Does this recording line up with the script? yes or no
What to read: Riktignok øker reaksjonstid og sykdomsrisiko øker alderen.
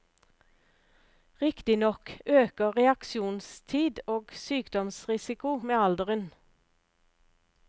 no